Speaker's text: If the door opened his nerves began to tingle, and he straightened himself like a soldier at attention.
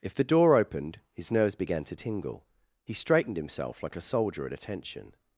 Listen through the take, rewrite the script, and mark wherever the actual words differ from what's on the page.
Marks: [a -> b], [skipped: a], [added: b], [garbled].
If the door opened his nerves began to tingle, [skipped: and] he straightened himself like a soldier at attention.